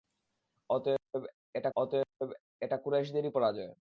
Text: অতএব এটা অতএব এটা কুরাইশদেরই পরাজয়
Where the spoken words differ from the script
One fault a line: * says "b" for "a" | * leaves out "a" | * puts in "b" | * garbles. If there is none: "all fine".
all fine